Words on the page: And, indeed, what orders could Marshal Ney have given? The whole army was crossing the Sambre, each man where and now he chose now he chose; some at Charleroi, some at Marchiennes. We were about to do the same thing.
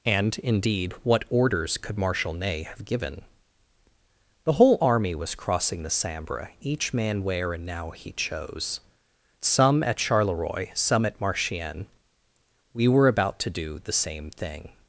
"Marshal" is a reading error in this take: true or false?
false